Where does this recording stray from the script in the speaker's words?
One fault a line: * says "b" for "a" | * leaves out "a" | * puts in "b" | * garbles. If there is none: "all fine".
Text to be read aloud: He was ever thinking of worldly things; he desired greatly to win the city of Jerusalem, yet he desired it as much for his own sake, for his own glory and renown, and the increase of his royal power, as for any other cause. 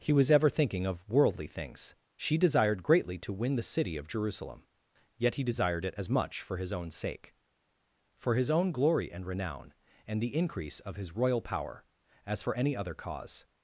* says "she" for "he"